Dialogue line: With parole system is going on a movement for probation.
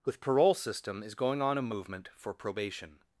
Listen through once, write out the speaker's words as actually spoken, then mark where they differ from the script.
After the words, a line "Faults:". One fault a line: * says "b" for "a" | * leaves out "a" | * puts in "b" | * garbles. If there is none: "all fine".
With parole system is going on a movement for probation.
Faults:
all fine